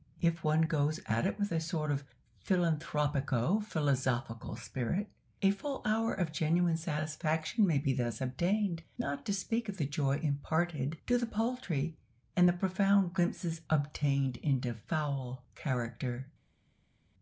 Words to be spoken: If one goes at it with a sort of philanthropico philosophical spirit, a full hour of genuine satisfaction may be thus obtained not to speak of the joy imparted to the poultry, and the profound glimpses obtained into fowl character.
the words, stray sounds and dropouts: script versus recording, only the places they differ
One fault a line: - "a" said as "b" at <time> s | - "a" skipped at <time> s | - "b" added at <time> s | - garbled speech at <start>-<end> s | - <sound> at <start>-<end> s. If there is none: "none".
none